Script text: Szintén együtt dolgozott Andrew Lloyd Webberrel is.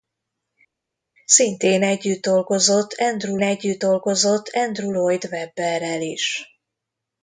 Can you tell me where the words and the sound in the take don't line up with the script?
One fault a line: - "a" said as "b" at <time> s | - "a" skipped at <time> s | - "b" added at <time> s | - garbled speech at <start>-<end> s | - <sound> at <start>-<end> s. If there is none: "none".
- "együtt dolgozott Andrew" added at 3.4 s